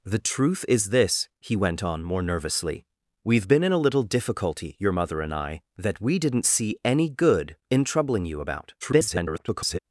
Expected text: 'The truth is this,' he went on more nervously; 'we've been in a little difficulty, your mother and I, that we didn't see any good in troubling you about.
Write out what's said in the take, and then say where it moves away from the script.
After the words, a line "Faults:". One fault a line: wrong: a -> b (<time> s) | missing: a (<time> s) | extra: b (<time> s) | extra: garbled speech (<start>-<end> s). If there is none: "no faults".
'The truth is this,' he went on more nervously; 'we've been in a little difficulty, your mother and I, that we didn't see any good in troubling you about. [garbled]
Faults:
extra: garbled speech (8.8-9.8 s)